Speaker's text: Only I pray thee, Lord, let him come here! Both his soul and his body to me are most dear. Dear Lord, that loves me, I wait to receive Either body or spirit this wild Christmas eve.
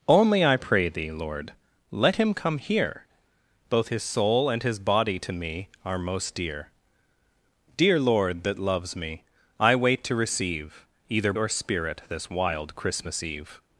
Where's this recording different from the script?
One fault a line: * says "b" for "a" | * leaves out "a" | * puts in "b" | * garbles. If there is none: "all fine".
* leaves out "body"